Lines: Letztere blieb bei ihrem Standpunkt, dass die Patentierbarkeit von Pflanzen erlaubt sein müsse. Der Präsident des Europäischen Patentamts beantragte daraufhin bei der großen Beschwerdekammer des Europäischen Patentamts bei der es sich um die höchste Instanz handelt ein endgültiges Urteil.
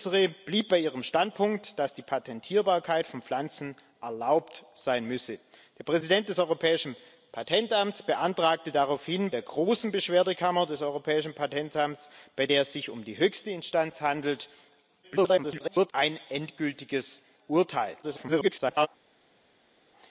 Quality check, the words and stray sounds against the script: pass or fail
fail